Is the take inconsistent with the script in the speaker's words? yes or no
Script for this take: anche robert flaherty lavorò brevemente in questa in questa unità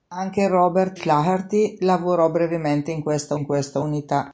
no